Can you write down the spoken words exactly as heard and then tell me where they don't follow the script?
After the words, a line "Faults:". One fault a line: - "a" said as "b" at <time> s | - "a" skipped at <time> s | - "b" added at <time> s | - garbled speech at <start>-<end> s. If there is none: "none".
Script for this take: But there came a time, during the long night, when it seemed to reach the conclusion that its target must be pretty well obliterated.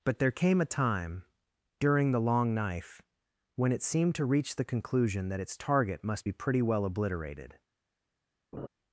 But there came a time, during the long knife, when it seemed to reach the conclusion that its target must be pretty well obliterated.
Faults:
- "night" said as "knife" at 2.5 s